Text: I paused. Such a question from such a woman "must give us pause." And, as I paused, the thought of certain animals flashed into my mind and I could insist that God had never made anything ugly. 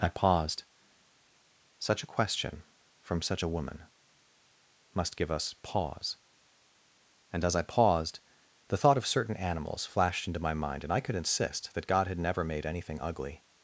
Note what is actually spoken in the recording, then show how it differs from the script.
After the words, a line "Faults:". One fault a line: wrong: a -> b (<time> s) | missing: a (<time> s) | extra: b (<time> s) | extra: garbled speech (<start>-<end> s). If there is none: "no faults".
I paused. Such a question from such a woman "must give us pause." And, as I paused, the thought of certain animals flashed into my mind and I could insist that God had never made anything ugly.
Faults:
no faults